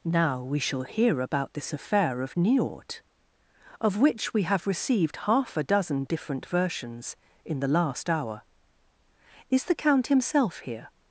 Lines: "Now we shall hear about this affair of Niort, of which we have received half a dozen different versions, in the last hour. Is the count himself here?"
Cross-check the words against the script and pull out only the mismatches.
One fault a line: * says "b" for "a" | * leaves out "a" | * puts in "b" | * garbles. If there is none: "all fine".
all fine